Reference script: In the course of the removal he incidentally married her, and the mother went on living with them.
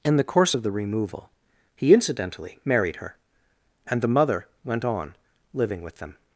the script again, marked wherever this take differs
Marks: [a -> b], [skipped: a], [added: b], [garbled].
In the course of the removal he incidentally married her, and the mother went on living with them.